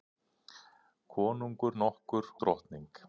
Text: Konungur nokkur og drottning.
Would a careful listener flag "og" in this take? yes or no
yes